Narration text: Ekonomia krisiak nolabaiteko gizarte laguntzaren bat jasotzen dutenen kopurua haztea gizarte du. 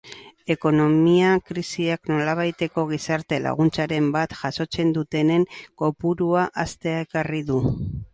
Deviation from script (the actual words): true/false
true